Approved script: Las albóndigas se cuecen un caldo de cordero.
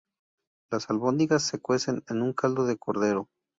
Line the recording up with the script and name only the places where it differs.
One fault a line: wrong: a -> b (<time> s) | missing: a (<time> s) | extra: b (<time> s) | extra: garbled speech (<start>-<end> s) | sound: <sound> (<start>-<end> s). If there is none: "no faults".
extra: en (2.1 s)